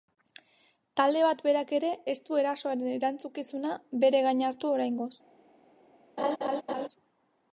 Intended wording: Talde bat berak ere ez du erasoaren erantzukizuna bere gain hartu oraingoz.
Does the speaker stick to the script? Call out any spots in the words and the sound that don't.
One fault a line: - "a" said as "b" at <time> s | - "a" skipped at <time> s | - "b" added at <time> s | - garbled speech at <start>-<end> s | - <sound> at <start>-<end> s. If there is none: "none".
- laugh at 6.2-6.9 s